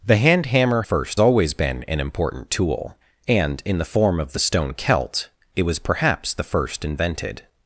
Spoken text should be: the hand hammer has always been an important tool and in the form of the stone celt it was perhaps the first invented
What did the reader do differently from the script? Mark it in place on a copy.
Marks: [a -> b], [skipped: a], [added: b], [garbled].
the hand hammer [has -> first] always been an important tool and in the form of the stone celt it was perhaps the first invented